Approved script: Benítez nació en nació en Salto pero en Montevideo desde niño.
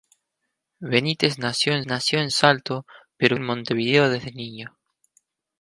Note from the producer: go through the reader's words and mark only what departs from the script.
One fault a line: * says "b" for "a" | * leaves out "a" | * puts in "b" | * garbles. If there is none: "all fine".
all fine